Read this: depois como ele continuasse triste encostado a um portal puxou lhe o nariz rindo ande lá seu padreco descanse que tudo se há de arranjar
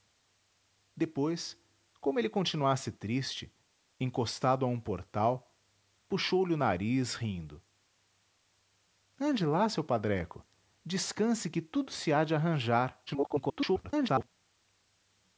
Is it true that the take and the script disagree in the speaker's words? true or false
true